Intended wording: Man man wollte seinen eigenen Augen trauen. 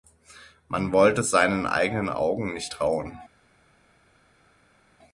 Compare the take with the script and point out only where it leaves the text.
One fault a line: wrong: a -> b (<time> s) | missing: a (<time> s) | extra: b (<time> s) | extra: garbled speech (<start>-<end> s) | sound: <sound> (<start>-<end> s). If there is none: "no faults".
missing: man (0.9 s)
extra: nicht (2.5 s)